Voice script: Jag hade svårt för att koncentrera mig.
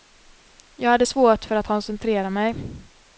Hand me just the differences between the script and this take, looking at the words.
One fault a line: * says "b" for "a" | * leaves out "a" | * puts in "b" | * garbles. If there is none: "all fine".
all fine